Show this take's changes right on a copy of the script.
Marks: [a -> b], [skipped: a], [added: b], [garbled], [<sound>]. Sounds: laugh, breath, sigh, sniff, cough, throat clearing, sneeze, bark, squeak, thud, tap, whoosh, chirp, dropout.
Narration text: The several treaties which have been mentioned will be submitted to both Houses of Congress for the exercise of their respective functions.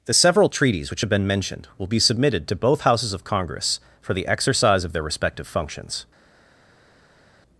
The several treaties which have been mentioned will be submitted to both Houses of Congress for the exercise of their respective functions.